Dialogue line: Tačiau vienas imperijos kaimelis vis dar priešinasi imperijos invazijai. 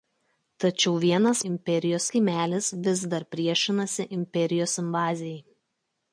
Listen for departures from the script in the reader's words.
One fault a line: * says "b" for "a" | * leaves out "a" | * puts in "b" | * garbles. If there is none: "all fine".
all fine